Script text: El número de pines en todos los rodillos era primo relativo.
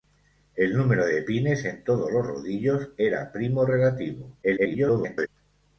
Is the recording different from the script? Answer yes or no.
yes